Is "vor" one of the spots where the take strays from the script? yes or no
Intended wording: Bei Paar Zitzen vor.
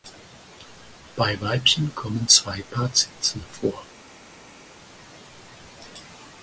no